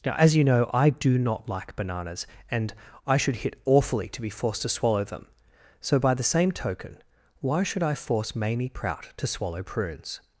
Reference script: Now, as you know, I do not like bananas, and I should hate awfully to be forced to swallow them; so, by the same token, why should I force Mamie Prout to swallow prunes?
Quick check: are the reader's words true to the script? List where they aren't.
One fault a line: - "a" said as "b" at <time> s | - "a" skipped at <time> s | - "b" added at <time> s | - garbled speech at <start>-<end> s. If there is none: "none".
- "hate" said as "hit" at 3.4 s